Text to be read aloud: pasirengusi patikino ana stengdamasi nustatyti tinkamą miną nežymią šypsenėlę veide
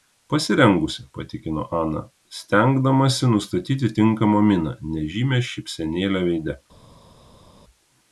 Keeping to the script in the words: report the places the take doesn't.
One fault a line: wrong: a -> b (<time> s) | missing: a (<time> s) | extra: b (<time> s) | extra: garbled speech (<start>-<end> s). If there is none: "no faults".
no faults